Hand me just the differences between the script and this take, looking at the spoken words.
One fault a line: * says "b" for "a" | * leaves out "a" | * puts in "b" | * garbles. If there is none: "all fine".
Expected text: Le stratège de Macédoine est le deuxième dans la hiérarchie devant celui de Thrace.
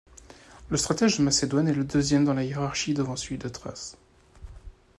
all fine